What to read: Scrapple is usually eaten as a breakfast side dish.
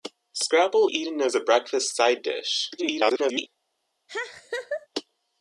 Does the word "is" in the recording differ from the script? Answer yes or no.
yes